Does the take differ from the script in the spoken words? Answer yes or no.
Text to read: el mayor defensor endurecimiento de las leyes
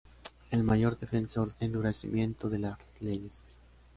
no